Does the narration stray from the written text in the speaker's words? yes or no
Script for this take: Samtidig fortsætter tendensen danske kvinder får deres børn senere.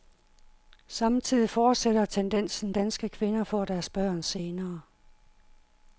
no